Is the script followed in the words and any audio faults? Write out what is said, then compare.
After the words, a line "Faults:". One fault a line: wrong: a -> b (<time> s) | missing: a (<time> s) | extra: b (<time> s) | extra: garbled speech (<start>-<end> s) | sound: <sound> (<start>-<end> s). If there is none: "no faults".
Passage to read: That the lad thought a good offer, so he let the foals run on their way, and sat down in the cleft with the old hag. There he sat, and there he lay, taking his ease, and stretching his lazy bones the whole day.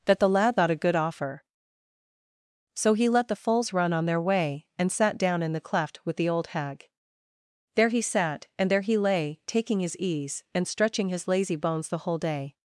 That the lad thought a good offer, so he let the foals run on their way, and sat down in the cleft with the old hag. There he sat, and there he lay, taking his ease, and stretching his lazy bones the whole day.
Faults:
no faults